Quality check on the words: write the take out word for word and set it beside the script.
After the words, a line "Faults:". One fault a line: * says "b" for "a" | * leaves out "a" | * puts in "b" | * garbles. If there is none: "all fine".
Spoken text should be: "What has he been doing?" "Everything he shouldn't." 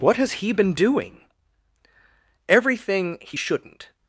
"What has he been doing?" "Everything he shouldn't."
Faults:
all fine